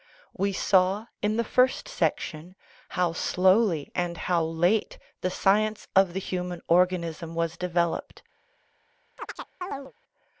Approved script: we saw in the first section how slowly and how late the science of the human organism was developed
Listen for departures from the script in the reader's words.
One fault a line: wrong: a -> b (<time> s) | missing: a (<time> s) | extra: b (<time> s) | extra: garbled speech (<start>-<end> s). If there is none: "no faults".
no faults